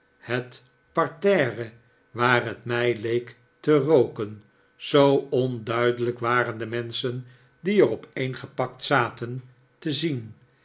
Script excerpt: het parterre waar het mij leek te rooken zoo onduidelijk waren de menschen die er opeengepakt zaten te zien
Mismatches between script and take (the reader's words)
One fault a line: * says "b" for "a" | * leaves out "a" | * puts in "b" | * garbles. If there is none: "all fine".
all fine